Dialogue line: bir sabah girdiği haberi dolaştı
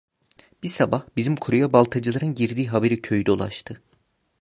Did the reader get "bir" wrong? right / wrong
right